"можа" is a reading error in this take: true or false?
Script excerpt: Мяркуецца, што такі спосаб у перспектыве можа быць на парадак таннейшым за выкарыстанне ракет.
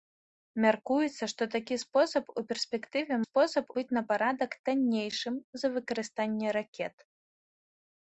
true